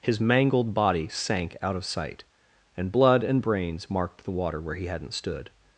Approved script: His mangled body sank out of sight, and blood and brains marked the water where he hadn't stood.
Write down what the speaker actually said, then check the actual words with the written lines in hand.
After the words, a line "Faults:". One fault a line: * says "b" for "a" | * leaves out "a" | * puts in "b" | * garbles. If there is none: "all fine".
His mangled body sank out of sight, and blood and brains marked the water where he hadn't stood.
Faults:
all fine